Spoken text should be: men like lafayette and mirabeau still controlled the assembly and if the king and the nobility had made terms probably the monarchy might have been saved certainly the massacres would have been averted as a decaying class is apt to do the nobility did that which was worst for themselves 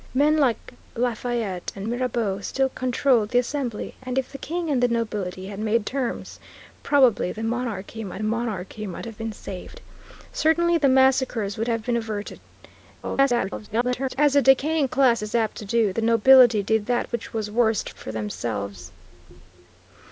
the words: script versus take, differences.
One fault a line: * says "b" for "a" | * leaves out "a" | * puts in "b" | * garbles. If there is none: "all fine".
* puts in "monarchy might"
* garbles